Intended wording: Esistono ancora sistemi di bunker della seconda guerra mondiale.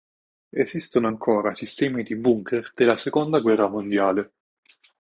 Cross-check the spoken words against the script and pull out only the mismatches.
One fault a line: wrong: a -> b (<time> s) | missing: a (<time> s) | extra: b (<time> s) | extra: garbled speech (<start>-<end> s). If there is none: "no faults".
no faults